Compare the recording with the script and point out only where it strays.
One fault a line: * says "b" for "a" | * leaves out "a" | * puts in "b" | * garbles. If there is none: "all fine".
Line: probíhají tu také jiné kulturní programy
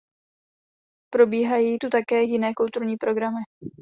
all fine